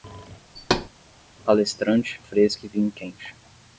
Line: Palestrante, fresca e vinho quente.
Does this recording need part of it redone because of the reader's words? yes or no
no